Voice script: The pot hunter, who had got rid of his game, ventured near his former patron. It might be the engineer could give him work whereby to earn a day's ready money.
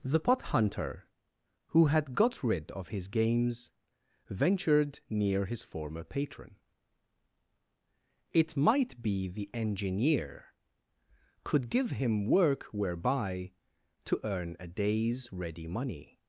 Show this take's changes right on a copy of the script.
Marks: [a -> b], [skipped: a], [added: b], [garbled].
The pot hunter, who had got rid of his [game, -> games] ventured near his former patron. It might be the engineer could give him work whereby to earn a day's ready money.